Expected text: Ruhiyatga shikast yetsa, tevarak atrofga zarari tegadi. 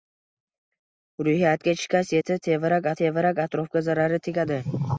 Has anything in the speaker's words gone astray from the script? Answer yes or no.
yes